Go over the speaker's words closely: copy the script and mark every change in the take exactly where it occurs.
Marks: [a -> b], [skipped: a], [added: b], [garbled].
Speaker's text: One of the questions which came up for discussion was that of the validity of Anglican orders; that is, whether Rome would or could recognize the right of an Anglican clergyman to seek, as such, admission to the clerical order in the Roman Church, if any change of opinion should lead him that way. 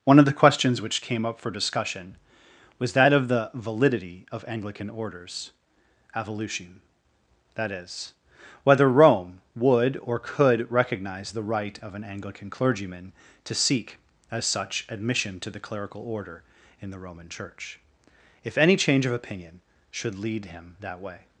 One of the questions which came up for discussion was that of the validity of Anglican orders; [added: evolution] that is, whether Rome would or could recognize the right of an Anglican clergyman to seek, as such, admission to the clerical order in the Roman Church, if any change of opinion should lead him that way.